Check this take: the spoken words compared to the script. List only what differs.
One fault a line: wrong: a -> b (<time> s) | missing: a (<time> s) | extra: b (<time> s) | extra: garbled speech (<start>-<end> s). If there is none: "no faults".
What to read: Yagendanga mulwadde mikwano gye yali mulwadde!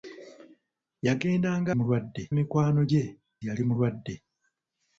no faults